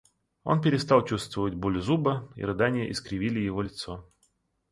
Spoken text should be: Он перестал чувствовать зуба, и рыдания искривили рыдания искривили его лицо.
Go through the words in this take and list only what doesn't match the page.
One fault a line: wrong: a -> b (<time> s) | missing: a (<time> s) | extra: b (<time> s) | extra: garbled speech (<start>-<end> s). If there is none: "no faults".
extra: боль (1.5 s)
missing: рыдания искривили (3.4 s)